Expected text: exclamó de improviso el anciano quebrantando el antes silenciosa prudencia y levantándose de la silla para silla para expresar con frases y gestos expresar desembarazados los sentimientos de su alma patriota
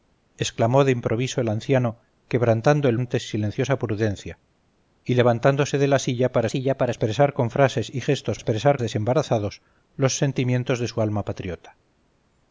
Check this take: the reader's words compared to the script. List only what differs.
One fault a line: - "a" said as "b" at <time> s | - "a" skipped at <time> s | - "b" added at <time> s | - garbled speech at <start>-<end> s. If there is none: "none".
none